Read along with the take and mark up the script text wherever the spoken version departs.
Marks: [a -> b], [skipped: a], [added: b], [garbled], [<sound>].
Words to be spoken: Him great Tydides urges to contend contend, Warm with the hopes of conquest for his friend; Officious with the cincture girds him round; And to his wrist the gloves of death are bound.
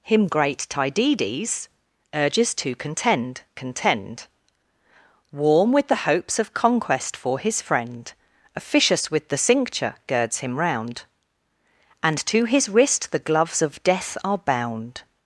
Him great Tydides urges to contend contend, Warm with the hopes of conquest for his friend; Officious with the cincture girds him round; And to his wrist the gloves of death are bound.